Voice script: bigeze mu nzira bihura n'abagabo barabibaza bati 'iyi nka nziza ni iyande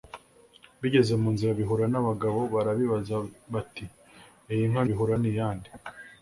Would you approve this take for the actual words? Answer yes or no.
no